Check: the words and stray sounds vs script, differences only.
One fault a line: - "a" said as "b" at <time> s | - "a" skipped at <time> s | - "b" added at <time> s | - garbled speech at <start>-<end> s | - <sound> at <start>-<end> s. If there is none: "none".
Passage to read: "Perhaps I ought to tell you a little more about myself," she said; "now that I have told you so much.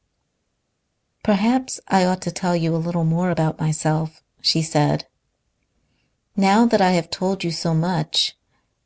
none